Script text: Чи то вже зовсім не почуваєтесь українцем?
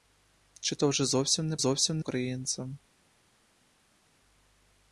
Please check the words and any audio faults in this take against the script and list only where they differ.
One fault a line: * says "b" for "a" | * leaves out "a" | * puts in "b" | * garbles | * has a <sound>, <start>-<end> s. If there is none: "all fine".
* says "зовсім" for "почуваєтесь"